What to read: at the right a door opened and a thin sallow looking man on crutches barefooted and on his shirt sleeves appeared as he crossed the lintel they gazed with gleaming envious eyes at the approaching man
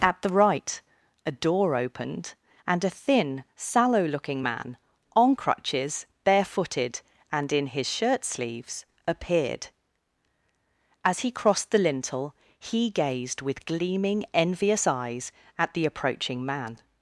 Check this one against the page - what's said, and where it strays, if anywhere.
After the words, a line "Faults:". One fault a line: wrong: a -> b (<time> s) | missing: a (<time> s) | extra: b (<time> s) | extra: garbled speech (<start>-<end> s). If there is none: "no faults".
at the right a door opened and a thin sallow looking man on crutches barefooted and in his shirt sleeves appeared as he crossed the lintel he gazed with gleaming envious eyes at the approaching man
Faults:
wrong: on -> in (7.5 s)
wrong: they -> he (12.6 s)